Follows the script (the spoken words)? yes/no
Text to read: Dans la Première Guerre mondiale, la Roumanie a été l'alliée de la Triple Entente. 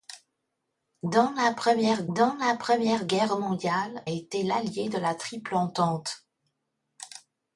no